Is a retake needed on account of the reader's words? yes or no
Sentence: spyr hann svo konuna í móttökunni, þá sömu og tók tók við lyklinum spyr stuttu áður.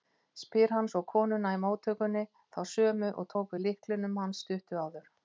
yes